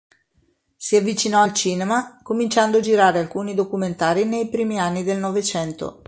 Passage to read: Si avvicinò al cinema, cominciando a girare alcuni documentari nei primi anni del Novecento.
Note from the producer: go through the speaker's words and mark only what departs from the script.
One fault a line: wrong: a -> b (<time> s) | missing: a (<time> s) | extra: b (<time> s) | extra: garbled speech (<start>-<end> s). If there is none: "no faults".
no faults